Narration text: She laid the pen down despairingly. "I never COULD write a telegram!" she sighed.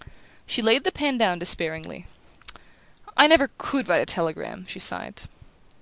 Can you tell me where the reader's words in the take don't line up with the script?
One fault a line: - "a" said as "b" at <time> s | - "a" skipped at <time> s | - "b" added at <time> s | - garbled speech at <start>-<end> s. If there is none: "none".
none